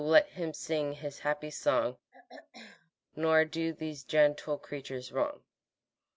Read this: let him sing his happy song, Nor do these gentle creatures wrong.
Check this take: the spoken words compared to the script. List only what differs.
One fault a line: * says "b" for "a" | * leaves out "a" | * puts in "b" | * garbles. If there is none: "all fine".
all fine